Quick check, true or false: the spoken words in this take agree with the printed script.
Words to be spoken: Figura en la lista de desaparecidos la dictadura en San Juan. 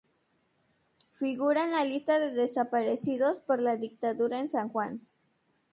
false